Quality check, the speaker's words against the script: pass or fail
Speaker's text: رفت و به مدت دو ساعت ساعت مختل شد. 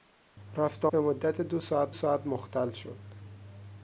pass